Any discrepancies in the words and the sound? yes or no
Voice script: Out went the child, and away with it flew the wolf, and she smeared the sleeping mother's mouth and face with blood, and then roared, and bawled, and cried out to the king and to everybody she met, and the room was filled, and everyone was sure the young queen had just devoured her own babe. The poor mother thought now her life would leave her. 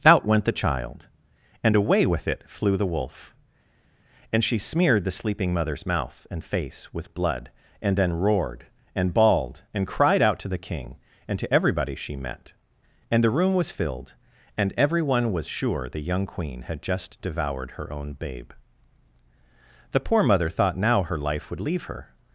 no